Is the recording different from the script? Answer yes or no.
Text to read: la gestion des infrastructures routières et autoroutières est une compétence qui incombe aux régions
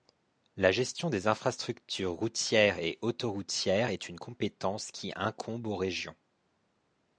no